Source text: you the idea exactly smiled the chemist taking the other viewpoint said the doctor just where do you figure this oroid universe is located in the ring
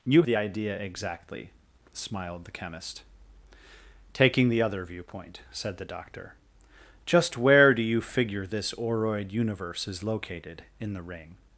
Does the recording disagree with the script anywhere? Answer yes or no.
no